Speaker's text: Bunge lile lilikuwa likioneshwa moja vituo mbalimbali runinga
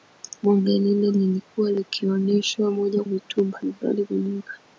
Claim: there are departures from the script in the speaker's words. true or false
false